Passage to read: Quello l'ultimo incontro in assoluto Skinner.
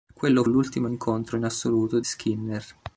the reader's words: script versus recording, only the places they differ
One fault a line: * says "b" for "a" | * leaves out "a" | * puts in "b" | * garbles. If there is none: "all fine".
all fine